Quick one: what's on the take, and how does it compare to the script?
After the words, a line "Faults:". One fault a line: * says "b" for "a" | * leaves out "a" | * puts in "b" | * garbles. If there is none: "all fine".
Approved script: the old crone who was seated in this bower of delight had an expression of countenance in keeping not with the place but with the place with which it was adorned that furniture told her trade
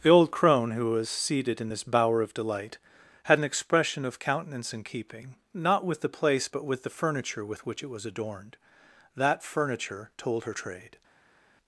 the old crone who was seated in this bower of delight had an expression of countenance in keeping not with the place but with the furniture with which it was adorned that furniture told her trade
Faults:
* says "furniture" for "place"